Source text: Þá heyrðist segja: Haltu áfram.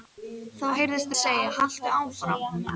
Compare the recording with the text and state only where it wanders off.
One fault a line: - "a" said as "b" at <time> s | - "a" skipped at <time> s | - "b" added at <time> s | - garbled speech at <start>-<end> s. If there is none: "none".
none